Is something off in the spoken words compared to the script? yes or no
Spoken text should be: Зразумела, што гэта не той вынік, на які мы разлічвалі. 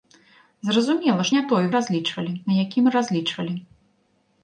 yes